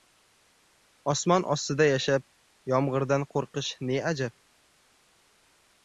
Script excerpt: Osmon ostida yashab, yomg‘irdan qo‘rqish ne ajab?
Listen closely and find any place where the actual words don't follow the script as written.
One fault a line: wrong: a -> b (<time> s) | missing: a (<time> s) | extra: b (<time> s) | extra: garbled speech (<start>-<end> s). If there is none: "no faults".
no faults